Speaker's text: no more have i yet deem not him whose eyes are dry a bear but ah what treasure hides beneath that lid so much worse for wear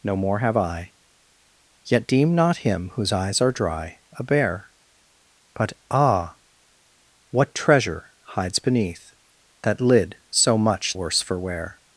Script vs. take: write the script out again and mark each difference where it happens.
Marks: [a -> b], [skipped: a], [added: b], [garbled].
no more have i yet deem not him whose eyes are dry a bear but ah what treasure hides beneath that lid so much worse for wear